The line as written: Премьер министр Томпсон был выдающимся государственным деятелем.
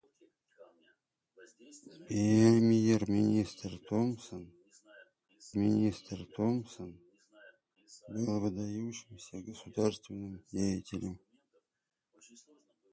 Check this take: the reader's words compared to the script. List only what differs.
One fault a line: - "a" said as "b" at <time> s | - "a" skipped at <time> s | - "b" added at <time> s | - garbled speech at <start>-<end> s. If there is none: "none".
- "министр Томпсон" added at 5.5 s